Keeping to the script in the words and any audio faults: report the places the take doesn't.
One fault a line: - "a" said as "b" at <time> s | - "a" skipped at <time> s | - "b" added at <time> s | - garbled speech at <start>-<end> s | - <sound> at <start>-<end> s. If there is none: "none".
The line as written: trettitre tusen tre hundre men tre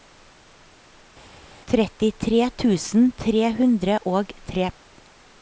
- "men" said as "og" at 4.1 s